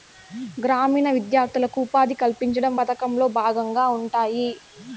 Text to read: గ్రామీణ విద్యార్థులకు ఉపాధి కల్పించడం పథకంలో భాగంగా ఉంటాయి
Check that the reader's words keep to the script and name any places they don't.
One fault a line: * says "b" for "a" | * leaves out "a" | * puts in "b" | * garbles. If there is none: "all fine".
all fine